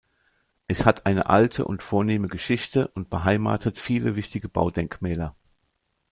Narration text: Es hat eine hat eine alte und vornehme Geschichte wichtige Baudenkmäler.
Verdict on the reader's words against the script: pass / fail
fail